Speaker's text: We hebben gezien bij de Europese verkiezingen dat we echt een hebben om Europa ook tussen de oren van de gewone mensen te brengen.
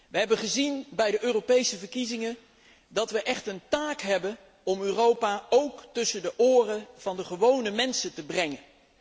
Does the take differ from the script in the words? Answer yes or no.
yes